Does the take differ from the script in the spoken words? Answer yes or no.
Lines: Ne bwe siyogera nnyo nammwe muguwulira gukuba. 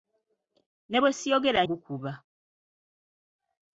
yes